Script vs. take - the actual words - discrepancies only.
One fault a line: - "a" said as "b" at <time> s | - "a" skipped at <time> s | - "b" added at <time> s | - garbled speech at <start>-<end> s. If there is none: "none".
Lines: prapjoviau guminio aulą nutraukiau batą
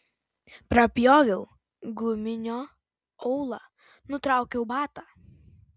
none